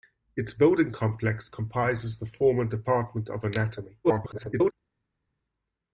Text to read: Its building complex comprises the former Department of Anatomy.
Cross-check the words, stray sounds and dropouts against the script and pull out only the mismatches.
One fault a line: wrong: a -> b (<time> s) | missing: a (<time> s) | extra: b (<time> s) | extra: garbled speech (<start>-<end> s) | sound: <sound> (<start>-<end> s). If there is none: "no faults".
extra: garbled speech (4.0-4.7 s)